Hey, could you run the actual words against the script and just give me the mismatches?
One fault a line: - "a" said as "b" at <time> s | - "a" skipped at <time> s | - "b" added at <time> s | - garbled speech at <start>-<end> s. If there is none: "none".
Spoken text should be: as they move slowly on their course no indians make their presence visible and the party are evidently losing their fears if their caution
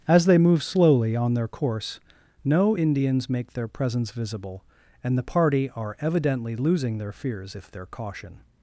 none